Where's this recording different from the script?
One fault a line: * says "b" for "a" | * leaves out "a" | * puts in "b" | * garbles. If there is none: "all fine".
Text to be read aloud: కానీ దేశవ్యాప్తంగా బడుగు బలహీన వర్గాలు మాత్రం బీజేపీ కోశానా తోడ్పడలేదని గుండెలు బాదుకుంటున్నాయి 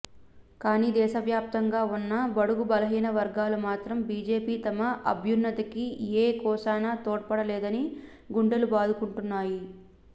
* puts in "ఉన్న"
* puts in "తమ అభ్యున్నతికి ఏ"